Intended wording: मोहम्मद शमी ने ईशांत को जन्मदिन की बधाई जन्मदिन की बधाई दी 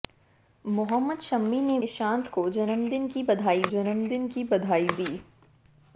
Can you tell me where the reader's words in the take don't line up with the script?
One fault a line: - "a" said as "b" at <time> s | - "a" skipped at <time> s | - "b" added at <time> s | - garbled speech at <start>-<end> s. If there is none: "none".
none